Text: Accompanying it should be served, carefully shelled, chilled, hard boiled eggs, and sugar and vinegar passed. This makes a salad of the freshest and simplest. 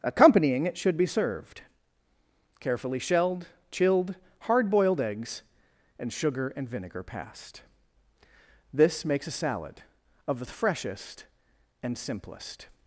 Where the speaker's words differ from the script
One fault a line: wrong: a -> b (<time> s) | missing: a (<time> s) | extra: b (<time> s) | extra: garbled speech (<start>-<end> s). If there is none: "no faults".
no faults